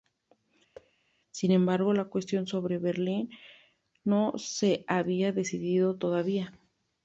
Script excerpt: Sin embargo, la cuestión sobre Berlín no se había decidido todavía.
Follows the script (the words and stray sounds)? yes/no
no